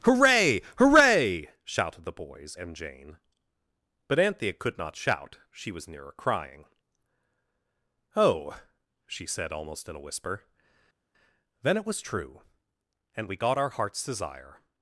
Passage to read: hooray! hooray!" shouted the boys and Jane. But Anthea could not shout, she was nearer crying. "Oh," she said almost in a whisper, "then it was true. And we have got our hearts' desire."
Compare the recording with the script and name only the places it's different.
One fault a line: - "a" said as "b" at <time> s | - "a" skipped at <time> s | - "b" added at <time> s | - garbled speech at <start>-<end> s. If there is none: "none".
- "have" skipped at 13.4 s